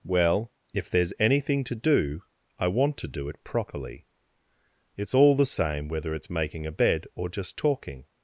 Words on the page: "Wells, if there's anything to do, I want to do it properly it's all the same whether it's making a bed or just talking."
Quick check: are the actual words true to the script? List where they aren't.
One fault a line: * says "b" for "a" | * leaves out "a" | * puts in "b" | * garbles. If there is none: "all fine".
* says "Well" for "Wells"